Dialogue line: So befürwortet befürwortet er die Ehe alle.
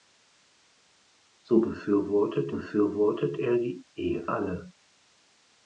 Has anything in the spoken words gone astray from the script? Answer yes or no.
no